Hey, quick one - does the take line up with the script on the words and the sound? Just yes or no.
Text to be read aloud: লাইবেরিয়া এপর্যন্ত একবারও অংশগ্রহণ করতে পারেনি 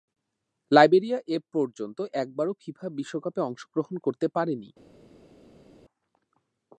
no